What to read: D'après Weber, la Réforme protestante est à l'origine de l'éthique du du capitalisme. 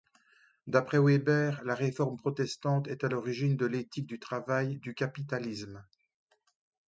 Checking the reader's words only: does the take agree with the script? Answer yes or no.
no